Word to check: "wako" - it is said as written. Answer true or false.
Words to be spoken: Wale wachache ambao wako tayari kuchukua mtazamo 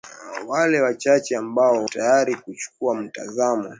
false